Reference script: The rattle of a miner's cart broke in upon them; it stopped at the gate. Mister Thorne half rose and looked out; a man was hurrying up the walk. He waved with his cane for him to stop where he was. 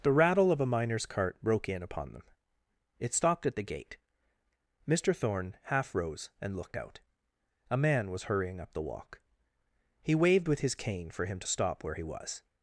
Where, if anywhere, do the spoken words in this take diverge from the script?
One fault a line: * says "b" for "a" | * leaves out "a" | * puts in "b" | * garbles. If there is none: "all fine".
all fine